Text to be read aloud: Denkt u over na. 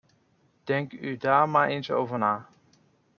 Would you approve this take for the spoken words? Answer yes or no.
no